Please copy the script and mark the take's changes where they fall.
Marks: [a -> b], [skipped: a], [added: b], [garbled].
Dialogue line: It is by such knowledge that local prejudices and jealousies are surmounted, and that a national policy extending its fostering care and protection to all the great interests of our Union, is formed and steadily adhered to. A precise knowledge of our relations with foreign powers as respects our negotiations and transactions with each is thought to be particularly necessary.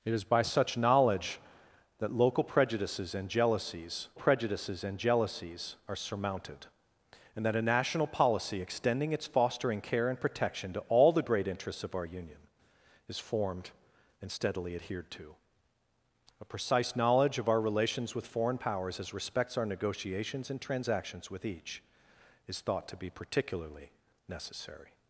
It is by such knowledge that local prejudices and jealousies [added: prejudices and jealousies] are surmounted, and that a national policy extending its fostering care and protection to all the great interests of our Union, is formed and steadily adhered to. A precise knowledge of our relations with foreign powers as respects our negotiations and transactions with each is thought to be particularly necessary.